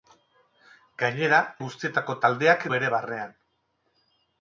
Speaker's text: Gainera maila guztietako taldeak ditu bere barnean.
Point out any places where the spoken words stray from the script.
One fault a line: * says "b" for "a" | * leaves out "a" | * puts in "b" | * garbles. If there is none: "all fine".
* leaves out "maila"
* leaves out "ditu"